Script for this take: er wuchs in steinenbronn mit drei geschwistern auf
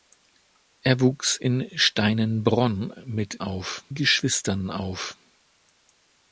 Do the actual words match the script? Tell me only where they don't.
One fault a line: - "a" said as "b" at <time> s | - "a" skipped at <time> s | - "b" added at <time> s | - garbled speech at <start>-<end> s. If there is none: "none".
- "drei" said as "auf" at 3.4 s